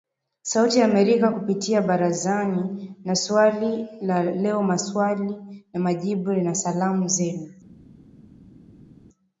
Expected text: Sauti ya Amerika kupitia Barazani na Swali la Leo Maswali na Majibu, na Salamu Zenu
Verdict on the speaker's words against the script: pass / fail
pass